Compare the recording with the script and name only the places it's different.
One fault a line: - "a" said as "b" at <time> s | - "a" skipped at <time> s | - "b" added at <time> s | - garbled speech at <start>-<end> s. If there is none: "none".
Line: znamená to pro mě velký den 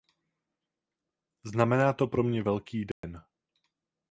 none